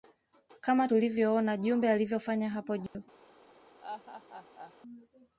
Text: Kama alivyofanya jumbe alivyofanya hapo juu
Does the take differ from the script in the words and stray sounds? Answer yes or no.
yes